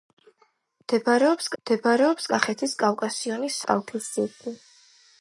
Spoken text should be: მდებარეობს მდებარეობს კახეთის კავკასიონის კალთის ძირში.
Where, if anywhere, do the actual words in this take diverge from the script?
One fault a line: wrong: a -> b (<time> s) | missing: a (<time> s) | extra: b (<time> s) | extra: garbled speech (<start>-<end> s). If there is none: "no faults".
no faults